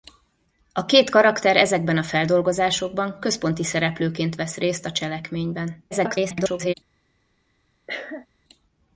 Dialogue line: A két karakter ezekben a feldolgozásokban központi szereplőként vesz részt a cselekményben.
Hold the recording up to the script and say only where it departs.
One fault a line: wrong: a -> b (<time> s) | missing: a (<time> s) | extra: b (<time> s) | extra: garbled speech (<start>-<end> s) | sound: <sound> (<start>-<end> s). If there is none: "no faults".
extra: garbled speech (5.9-6.7 s)
sound: cough (7.9-8.3 s)